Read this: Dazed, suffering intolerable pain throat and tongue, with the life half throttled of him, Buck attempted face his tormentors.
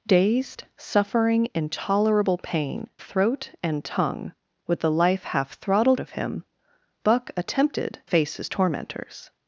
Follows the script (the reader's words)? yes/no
yes